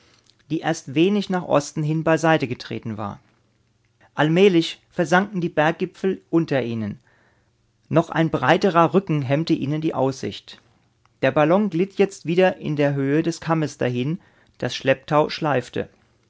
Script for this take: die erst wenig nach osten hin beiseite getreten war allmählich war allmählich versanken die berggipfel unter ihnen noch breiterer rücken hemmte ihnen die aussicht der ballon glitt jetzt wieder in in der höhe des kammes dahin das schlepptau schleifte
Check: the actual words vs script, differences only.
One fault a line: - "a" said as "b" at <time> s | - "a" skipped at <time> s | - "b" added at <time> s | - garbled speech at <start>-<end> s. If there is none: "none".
- "war allmählich" skipped at 4.8 s
- "ein" added at 8.1 s
- "in" skipped at 12.8 s